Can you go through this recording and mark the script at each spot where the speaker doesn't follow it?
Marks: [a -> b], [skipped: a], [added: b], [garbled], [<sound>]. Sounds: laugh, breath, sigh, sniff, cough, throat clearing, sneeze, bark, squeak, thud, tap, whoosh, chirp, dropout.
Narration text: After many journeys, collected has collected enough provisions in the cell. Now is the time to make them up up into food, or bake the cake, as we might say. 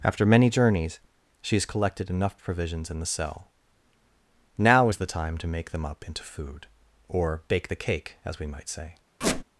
After many journeys, [collected -> she] has collected enough provisions in the cell. Now is the time to make them up [skipped: up] into food, or bake the cake, as we might say. [squeak]